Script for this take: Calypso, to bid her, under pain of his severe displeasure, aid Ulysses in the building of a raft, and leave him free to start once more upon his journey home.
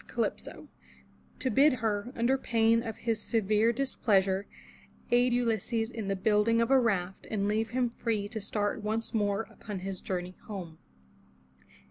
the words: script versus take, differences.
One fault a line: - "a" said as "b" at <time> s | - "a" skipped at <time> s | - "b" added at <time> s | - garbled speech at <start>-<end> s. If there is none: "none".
none